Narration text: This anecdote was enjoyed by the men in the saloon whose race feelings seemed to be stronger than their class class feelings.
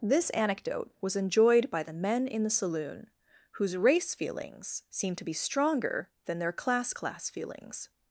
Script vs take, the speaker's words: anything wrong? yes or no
no